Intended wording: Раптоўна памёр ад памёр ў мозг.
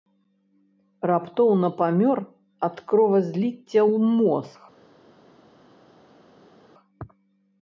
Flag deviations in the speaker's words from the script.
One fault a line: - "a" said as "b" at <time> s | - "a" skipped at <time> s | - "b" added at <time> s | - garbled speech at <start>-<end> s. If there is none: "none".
- "памёр" said as "кровазліцця" at 2.9 s